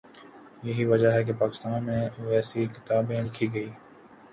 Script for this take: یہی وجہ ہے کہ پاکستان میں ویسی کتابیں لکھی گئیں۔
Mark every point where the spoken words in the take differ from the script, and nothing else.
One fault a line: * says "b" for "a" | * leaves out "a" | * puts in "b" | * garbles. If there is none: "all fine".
all fine